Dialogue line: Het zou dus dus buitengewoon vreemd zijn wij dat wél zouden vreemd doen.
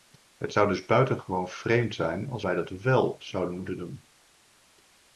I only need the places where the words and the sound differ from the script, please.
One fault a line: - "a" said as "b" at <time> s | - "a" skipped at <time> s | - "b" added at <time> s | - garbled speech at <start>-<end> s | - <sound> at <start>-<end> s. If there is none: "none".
- "dus" skipped at 0.8 s
- "als" added at 2.3 s
- "vreemd" said as "moeten" at 3.5 s